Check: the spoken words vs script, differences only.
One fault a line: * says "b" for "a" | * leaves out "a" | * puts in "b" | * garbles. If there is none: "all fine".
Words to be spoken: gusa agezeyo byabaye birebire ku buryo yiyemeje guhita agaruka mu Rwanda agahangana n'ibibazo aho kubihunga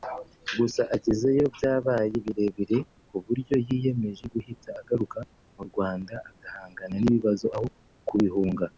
all fine